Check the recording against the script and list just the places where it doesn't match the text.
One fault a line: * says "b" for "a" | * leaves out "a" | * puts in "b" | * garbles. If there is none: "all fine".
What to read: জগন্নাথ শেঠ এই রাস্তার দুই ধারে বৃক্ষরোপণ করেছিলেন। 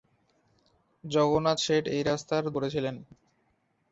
* leaves out "দুই ধারে বৃক্ষরোপণ"